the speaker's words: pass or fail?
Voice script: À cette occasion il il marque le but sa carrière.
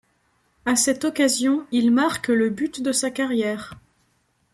fail